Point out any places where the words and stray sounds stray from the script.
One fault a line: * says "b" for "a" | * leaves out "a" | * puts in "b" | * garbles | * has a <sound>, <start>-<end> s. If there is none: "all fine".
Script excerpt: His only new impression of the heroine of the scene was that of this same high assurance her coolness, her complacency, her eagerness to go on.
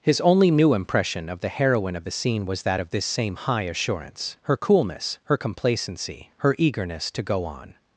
all fine